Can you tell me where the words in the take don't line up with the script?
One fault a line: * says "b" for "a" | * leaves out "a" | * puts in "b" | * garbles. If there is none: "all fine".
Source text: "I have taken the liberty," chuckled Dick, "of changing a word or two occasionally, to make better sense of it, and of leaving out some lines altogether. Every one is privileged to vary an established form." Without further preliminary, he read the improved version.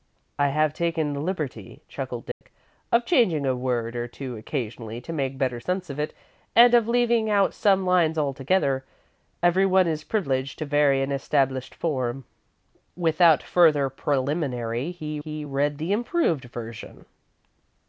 * puts in "he"